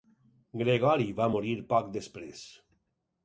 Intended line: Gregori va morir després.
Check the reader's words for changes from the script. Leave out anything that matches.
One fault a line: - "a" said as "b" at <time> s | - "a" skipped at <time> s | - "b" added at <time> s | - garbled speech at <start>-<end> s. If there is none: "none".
- "poc" added at 1.7 s